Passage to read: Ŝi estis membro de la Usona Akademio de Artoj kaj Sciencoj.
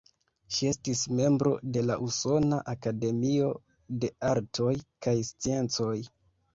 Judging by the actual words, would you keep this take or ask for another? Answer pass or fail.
pass